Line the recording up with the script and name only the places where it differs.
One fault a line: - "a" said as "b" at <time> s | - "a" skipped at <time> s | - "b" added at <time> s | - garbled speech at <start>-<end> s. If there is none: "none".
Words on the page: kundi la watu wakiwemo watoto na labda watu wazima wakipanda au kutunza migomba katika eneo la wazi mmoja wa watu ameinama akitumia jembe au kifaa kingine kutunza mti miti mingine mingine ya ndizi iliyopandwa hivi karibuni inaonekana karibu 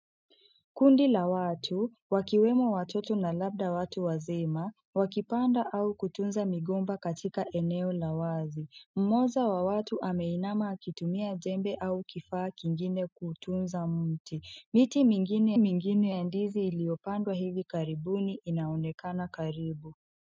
none